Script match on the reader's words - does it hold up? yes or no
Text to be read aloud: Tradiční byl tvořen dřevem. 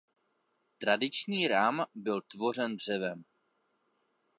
no